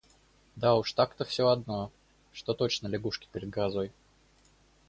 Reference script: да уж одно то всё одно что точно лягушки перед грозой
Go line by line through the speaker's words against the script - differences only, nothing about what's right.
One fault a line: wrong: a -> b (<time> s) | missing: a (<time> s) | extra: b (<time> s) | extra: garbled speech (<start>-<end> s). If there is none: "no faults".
wrong: одно -> так (0.9 s)